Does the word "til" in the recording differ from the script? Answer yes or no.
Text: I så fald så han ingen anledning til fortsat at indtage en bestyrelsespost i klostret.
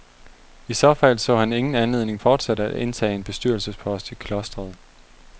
yes